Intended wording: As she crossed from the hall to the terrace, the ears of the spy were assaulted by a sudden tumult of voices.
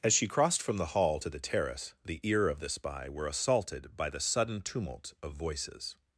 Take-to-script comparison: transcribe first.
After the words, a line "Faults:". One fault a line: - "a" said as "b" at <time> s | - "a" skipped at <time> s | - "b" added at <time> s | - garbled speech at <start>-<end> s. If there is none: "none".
As she crossed from the hall to the terrace, the ear of the spy were assaulted by the sudden tumult of voices.
Faults:
- "ears" said as "ear" at 2.2 s
- "a" said as "the" at 4.1 s